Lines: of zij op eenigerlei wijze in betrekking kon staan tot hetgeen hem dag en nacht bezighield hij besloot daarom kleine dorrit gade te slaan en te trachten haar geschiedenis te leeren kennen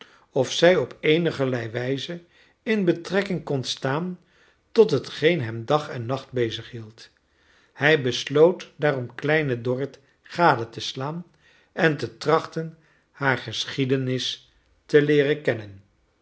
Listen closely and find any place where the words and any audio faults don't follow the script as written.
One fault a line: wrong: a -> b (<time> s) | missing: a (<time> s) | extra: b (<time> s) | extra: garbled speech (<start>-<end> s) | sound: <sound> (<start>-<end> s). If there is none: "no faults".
no faults